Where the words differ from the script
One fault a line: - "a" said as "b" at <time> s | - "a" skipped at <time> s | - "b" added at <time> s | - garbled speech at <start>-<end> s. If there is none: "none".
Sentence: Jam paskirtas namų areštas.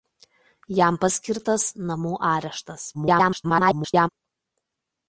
- garbled speech at 2.9-4.1 s